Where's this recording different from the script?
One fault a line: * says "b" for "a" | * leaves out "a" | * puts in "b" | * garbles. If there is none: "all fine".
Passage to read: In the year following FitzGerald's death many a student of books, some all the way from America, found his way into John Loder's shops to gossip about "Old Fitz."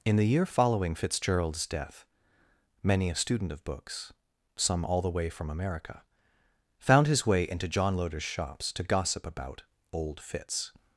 all fine